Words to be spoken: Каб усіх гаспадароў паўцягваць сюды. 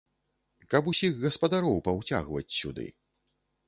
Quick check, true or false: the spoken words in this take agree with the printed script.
true